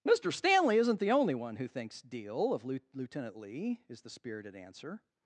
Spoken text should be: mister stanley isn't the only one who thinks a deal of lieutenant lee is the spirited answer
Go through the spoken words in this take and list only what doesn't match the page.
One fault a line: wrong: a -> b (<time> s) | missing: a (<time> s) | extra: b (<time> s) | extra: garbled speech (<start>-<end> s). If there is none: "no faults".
missing: a (2.0 s)